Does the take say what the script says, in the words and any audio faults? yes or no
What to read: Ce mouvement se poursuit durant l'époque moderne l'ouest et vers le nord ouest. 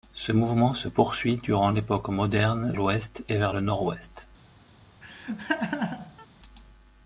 no